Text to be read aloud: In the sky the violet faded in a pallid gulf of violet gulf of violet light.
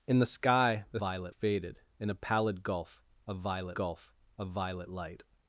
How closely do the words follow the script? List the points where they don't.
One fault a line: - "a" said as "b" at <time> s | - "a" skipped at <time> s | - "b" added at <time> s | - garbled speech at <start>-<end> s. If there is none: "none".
none